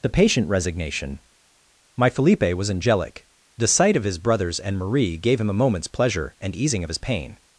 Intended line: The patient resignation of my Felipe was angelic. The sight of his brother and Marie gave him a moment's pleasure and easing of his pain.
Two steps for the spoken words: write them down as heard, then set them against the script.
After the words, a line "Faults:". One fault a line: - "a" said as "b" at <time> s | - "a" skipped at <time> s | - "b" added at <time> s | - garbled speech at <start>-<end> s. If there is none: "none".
The patient resignation my Felipe was angelic. The sight of his brothers and Marie gave him a moment's pleasure and easing of his pain.
Faults:
- "of" skipped at 1.2 s
- "brother" said as "brothers" at 4.2 s